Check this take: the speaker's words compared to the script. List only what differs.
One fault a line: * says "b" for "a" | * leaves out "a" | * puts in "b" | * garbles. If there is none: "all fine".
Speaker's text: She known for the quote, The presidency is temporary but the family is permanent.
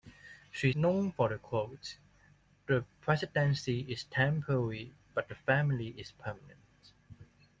all fine